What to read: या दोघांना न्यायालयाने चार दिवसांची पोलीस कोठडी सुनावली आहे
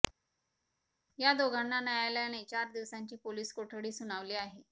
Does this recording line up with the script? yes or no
yes